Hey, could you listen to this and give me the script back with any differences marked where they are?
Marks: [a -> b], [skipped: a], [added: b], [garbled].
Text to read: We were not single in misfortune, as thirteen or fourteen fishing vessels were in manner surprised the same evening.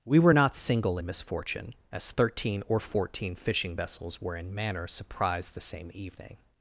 We were not single in misfortune, as thirteen or fourteen fishing vessels were in manner surprised the same evening.